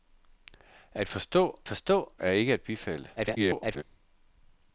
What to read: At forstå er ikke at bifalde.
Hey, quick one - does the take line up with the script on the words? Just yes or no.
no